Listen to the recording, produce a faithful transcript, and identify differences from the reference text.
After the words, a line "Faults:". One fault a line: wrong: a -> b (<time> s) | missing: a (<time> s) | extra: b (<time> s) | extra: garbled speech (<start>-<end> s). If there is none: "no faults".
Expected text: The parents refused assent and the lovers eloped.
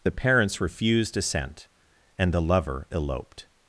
The parents refused assent and the lover eloped.
Faults:
wrong: lovers -> lover (2.4 s)